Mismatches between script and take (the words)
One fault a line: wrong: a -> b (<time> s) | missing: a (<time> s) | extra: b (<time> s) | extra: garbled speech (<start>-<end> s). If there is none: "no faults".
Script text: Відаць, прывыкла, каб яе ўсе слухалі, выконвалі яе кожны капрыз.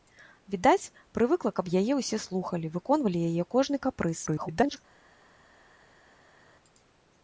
extra: garbled speech (4.3-4.8 s)